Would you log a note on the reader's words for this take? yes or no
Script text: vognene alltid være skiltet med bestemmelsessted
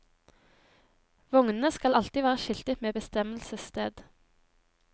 yes